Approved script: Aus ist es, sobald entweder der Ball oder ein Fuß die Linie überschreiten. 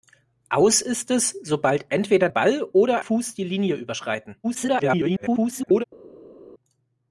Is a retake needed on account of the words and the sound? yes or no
yes